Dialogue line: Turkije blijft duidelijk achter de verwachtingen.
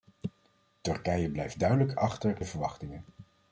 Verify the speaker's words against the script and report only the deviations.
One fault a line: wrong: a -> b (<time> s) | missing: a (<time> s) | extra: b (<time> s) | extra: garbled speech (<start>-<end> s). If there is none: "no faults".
no faults